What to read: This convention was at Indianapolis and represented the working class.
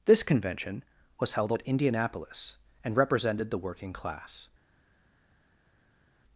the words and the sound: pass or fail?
fail